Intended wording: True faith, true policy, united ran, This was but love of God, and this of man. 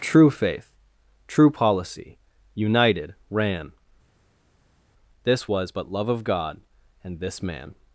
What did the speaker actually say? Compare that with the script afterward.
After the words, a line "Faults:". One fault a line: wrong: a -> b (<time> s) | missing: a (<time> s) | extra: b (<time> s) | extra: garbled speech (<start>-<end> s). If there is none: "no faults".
True faith, true policy, united ran, This was but love of God, and this man.
Faults:
missing: of (7.4 s)